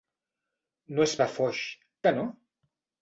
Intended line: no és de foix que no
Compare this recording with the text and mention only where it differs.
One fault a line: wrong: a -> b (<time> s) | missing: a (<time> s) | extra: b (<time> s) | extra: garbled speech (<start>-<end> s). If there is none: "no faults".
no faults